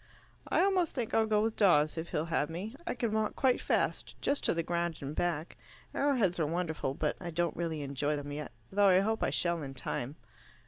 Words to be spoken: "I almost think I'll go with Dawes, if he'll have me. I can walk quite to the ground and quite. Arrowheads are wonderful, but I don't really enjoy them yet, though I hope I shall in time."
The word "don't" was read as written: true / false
true